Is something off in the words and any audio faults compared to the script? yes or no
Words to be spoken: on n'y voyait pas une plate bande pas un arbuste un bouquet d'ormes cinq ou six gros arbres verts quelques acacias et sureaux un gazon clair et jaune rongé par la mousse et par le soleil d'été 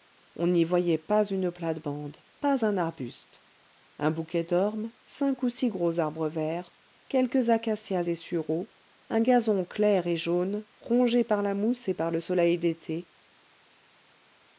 no